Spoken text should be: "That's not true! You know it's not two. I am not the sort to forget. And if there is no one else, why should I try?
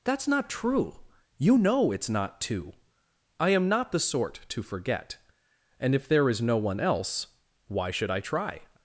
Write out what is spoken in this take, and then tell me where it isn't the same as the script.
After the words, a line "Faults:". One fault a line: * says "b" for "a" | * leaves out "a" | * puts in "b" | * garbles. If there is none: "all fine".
"That's not true! You know it's not two. I am not the sort to forget. And if there is no one else, why should I try?
Faults:
all fine